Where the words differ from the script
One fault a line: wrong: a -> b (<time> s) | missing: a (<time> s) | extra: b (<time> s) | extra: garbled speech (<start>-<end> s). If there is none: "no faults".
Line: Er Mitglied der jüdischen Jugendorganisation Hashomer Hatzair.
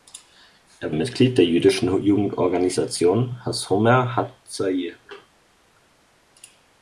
no faults